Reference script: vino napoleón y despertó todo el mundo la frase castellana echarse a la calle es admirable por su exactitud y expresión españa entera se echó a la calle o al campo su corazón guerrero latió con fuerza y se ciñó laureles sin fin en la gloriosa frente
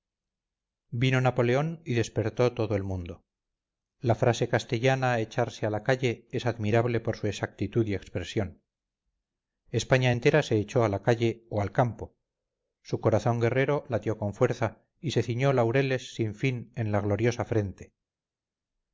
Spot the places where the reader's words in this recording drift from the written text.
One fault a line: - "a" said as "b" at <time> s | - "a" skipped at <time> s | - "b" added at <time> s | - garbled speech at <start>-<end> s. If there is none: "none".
none